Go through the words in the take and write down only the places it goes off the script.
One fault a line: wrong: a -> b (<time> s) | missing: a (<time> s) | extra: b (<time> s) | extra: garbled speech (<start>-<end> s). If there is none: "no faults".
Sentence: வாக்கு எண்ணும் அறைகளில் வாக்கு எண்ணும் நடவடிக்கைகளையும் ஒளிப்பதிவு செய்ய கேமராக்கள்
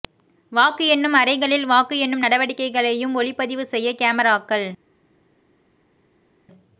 no faults